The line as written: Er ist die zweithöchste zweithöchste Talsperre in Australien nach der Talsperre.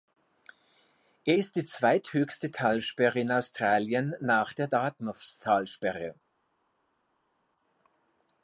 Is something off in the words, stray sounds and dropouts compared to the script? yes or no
yes